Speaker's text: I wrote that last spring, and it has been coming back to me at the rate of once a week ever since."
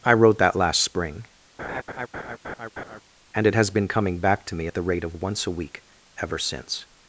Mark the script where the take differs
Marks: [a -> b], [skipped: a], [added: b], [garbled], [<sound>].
I wrote that last spring, [laugh] and it has been coming back to me at the rate of once a week ever since."